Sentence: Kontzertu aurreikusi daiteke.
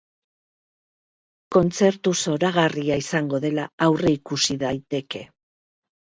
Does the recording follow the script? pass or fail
fail